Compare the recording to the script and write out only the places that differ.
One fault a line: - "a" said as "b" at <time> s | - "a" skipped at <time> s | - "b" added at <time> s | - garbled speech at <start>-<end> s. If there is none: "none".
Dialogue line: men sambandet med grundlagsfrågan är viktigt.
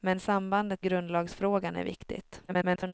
- "med" skipped at 0.8 s
- garbled speech at 2.5-2.9 s